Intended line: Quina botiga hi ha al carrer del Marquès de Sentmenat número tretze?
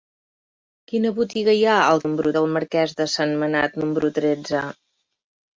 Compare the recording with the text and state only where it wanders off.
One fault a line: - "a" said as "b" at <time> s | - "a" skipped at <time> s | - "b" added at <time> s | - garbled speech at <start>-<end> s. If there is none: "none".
- "carrer" said as "número" at 2.1 s